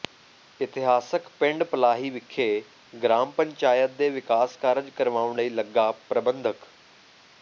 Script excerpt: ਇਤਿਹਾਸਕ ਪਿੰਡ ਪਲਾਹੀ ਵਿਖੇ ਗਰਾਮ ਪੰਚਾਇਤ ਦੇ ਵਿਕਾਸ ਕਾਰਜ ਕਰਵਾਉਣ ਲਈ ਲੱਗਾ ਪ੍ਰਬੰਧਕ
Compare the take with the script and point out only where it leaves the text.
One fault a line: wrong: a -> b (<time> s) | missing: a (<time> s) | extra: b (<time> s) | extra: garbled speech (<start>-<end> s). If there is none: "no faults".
no faults